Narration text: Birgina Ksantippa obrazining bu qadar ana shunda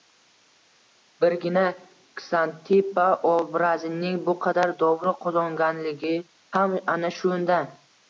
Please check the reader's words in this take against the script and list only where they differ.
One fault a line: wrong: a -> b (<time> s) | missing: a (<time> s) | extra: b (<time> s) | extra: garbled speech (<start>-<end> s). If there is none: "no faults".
extra: dovruq qozonganligi ham (4.8 s)